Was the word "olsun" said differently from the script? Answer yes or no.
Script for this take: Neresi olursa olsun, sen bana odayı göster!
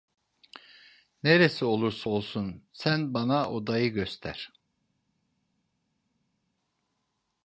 no